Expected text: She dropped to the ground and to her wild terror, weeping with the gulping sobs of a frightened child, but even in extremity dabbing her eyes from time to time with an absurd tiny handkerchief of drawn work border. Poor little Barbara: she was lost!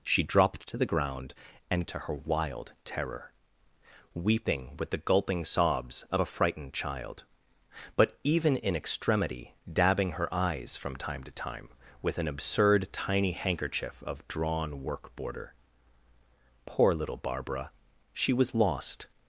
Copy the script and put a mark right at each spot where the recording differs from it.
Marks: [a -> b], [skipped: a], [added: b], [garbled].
She dropped to the ground and to her wild terror, weeping with the gulping sobs of a frightened child, but even in extremity dabbing her eyes from time to time with an absurd tiny handkerchief of drawn work border. Poor little Barbara: she was lost!